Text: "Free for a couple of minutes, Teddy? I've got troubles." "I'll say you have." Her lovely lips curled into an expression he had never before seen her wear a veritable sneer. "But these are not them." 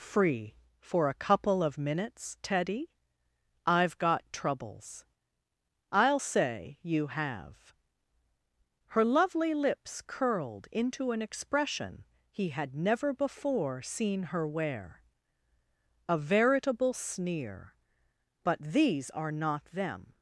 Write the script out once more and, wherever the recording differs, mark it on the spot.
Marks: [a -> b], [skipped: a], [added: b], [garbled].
"Free for a couple of minutes, Teddy? I've got troubles." "I'll say you have." Her lovely lips curled into an expression he had never before seen her wear a veritable sneer. "But these are not them."